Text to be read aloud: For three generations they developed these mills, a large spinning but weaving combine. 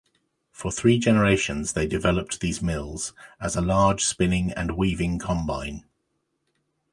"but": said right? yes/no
no